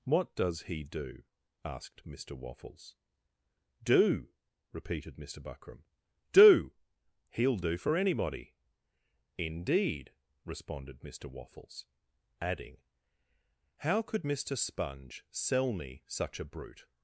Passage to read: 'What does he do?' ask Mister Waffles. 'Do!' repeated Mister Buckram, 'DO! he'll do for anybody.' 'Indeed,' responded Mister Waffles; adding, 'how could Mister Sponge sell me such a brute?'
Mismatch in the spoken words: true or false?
true